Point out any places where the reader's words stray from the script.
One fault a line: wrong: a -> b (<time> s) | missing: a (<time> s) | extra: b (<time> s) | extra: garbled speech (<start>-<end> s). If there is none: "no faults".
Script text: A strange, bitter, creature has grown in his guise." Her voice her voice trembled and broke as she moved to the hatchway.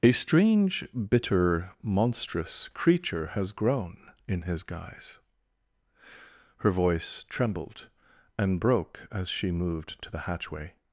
extra: monstrous (1.8 s)
missing: her voice (7.2 s)